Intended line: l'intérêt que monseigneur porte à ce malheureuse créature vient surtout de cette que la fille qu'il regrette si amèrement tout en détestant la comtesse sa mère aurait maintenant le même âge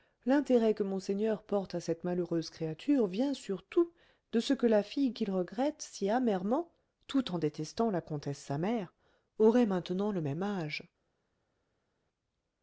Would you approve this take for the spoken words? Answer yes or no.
no